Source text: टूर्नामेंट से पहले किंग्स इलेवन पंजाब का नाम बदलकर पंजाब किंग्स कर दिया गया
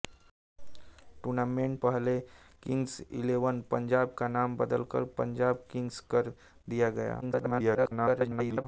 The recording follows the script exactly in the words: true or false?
false